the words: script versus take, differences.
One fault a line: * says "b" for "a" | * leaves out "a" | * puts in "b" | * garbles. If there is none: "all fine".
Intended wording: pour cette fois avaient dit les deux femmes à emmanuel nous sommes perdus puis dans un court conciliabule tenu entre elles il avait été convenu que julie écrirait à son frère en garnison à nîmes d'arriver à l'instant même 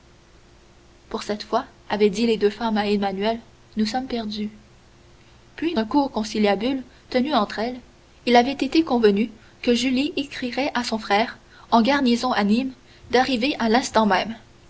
* leaves out "dans"